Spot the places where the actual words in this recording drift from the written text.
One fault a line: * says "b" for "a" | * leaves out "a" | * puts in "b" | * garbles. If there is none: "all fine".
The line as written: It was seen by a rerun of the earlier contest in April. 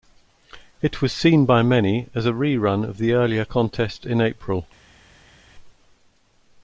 * puts in "many as"